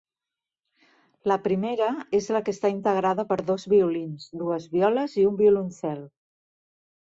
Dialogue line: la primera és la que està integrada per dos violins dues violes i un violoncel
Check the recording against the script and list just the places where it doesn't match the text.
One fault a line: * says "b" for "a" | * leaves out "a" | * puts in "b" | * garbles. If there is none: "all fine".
all fine